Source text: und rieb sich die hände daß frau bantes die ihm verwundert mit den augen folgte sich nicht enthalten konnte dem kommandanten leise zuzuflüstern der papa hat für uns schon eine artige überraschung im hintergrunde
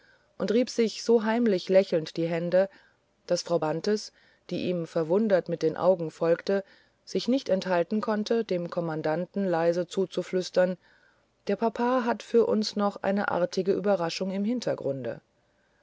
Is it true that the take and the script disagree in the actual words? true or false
true